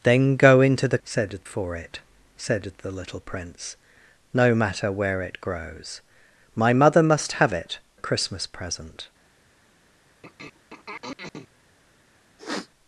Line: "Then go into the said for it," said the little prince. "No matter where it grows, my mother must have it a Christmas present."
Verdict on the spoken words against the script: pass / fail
pass